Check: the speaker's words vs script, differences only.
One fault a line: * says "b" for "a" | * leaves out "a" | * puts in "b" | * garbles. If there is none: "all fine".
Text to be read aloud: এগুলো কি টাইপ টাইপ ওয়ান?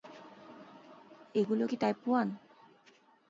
* leaves out "টাইপ"